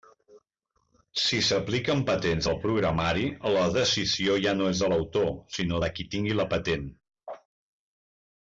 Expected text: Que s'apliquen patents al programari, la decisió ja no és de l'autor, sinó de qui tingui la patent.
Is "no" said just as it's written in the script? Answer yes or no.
yes